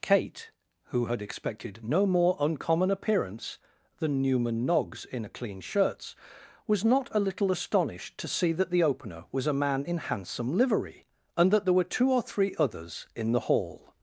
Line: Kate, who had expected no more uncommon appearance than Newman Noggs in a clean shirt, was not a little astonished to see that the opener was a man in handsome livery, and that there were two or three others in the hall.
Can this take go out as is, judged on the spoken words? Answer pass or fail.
fail